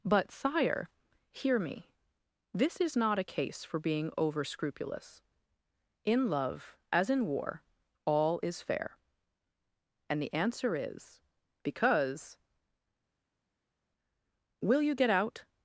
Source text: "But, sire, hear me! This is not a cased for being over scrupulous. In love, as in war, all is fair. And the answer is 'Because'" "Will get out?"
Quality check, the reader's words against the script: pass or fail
fail